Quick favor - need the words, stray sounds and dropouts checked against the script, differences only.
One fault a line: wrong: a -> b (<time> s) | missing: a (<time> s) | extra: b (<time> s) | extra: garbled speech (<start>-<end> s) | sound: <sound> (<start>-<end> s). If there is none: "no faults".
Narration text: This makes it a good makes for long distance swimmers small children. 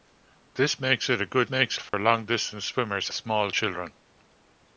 sound: dropout (1.9-1.9 s)